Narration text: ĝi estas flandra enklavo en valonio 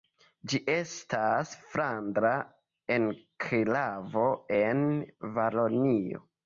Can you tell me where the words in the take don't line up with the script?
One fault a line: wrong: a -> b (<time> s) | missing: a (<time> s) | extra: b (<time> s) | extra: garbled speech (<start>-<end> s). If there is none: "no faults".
no faults